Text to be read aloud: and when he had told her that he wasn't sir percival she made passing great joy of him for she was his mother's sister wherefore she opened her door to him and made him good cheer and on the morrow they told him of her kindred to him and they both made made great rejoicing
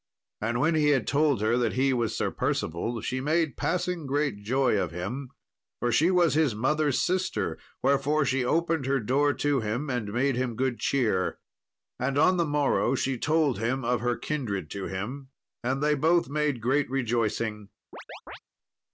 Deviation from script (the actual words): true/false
true